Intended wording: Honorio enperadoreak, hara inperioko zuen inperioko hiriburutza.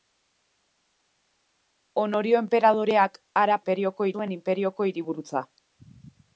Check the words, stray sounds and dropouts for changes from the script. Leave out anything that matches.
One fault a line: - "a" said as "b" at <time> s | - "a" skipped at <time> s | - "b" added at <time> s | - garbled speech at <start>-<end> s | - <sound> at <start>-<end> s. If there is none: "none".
none